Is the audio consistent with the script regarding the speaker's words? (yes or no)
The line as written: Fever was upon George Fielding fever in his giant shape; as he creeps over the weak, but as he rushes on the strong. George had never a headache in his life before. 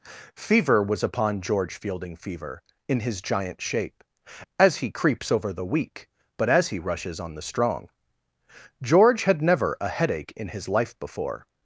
yes